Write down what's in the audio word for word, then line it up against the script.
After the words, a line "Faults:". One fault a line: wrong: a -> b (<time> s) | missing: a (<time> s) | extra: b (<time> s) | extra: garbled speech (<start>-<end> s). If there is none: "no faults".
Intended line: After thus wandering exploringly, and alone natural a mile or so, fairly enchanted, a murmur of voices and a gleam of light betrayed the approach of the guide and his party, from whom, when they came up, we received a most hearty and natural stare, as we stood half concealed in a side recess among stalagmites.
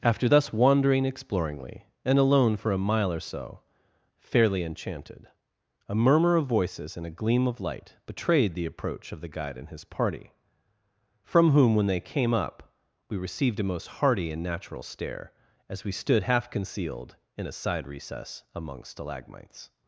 After thus wandering exploringly, and alone for a mile or so, fairly enchanted, a murmur of voices and a gleam of light betrayed the approach of the guide and his party, from whom, when they came up, we received a most hearty and natural stare, as we stood half concealed in a side recess among stalagmites.
Faults:
wrong: natural -> for (2.5 s)